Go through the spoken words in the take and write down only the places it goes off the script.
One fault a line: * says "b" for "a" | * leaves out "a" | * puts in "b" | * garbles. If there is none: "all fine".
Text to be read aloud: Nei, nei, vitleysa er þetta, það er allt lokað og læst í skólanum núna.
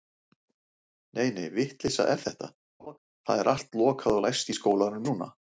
all fine